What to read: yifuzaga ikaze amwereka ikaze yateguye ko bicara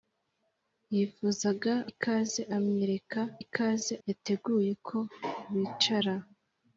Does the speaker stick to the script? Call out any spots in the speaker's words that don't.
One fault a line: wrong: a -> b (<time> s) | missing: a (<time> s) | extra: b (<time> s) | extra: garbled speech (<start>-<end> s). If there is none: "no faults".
no faults